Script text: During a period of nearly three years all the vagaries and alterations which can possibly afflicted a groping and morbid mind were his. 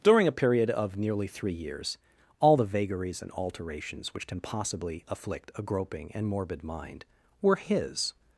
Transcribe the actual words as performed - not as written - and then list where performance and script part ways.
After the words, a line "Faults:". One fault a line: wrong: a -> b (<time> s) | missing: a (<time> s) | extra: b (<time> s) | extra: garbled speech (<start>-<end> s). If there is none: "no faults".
During a period of nearly three years all the vagaries and alterations which can possibly afflict a groping and morbid mind were his.
Faults:
wrong: afflicted -> afflict (5.1 s)